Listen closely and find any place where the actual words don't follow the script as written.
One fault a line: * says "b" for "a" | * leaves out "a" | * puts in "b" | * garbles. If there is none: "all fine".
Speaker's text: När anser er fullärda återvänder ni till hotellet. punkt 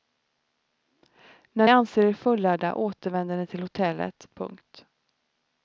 all fine